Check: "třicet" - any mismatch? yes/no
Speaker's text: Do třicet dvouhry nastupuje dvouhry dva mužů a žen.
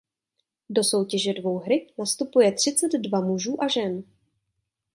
yes